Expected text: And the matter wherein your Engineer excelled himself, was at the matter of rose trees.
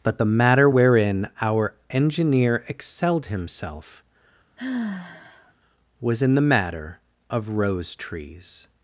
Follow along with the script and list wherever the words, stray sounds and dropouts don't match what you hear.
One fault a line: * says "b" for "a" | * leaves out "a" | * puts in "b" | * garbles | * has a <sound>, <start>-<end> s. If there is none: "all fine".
* says "But" for "And"
* says "our" for "your"
* has a sigh, 4.6-5.5 s
* says "in" for "at"